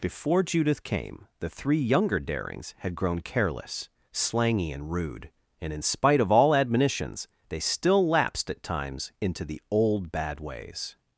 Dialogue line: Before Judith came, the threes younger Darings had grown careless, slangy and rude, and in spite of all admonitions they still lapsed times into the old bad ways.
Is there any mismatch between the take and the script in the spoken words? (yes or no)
yes